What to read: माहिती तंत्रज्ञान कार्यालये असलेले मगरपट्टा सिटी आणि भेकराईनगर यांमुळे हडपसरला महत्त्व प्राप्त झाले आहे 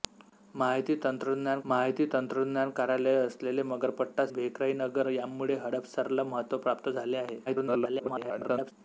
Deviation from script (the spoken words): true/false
true